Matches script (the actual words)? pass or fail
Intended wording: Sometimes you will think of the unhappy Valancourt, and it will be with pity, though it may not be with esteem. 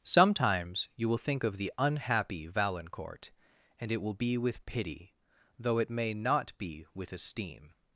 pass